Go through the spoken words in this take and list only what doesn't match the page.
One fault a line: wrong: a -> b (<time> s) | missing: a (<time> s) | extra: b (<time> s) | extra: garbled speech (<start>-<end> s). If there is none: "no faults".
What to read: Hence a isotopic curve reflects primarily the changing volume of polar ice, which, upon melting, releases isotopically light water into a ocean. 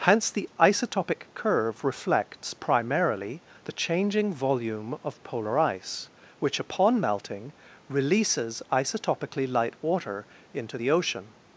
wrong: a -> the (0.3 s)
wrong: a -> the (10.8 s)